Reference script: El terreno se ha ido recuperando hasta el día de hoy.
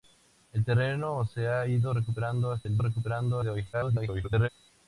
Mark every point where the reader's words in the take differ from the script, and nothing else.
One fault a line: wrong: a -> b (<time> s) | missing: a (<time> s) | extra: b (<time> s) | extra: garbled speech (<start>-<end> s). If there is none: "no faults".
wrong: día -> recuperando (2.8 s)
extra: garbled speech (3.7-4.5 s)